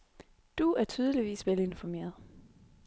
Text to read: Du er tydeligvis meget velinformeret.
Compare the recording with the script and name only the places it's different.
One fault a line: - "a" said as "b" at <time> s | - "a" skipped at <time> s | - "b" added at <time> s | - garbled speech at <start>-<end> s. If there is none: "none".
- "meget" skipped at 1.5 s